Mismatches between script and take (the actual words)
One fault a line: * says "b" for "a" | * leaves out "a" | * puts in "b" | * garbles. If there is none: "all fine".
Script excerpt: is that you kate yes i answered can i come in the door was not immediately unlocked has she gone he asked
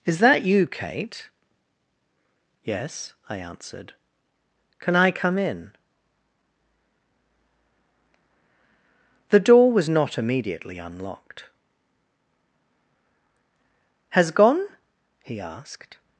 * leaves out "she"